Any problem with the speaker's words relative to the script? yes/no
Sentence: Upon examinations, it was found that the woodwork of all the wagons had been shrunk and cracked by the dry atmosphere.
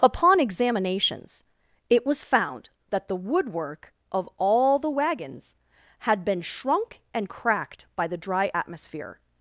no